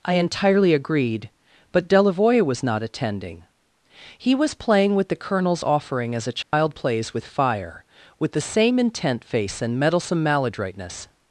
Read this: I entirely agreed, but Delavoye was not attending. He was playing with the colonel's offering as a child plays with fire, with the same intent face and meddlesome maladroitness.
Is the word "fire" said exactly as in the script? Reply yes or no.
yes